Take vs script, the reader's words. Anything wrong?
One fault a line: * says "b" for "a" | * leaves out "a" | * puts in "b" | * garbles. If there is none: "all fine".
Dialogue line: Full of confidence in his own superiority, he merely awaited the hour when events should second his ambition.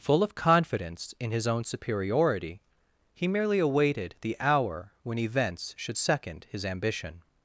all fine